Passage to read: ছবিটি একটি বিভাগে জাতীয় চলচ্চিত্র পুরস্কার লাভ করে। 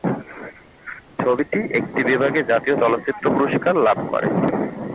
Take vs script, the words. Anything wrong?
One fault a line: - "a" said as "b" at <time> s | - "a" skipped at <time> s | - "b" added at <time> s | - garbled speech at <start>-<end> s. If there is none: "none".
none